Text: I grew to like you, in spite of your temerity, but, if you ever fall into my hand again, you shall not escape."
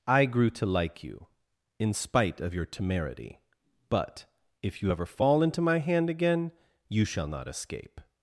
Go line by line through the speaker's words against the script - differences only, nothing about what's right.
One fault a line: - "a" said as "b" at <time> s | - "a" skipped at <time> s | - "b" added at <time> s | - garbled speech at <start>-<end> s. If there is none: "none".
none